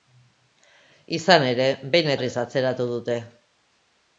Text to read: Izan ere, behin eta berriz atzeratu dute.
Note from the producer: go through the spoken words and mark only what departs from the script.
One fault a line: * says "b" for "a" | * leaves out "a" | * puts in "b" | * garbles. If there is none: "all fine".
* leaves out "eta"